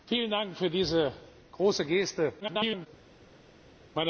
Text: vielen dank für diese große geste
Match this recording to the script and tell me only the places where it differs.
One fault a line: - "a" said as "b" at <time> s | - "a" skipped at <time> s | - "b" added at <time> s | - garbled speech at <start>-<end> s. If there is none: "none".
- garbled speech at 2.4-2.9 s